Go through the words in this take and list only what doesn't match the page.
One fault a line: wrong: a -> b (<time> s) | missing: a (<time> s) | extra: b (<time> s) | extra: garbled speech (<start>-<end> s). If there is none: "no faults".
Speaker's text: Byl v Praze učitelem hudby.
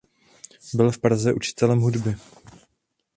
no faults